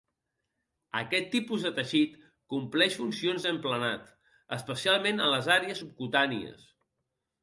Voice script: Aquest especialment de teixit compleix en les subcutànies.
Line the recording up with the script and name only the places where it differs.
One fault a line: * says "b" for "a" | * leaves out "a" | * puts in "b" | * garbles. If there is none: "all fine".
* says "tipus" for "especialment"
* puts in "funcions d'emplenat especialment"
* puts in "àrees"